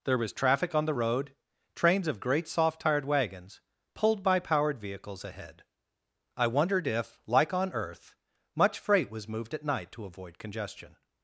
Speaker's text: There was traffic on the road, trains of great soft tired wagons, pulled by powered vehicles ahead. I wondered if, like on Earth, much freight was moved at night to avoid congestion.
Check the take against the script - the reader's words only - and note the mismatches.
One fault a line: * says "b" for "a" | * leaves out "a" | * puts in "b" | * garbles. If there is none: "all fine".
all fine